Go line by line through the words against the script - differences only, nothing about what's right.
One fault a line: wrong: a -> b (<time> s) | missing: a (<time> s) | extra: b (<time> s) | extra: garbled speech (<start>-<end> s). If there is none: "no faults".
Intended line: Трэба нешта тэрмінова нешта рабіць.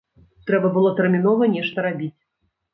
wrong: нешта -> было (0.8 s)